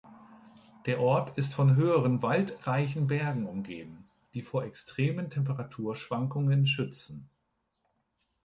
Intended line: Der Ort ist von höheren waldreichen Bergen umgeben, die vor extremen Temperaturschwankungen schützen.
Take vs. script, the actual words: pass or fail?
pass